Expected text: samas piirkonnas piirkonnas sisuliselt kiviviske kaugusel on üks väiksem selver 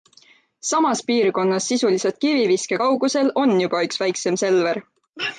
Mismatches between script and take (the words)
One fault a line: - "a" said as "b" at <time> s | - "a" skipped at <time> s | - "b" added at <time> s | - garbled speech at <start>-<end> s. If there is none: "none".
- "piirkonnas" skipped at 1.7 s
- "juba" added at 3.6 s